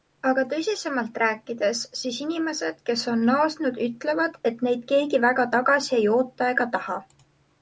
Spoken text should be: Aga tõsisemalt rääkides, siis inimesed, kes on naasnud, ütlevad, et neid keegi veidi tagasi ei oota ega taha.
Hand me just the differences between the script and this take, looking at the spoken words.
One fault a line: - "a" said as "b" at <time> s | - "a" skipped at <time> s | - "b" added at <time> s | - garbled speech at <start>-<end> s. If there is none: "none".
- "veidi" said as "väga" at 5.3 s